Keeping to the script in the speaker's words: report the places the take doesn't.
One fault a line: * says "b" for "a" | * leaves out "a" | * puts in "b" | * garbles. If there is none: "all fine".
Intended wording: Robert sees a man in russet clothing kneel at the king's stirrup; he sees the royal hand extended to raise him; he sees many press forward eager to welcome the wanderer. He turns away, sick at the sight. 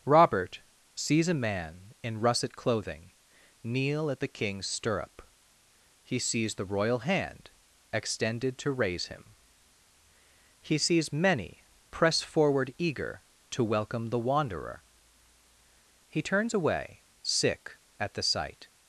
all fine